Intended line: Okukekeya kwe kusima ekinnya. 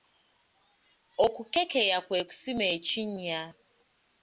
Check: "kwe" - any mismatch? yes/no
no